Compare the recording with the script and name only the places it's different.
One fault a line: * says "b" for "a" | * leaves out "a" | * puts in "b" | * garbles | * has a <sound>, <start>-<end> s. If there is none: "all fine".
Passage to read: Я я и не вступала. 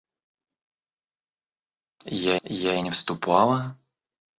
all fine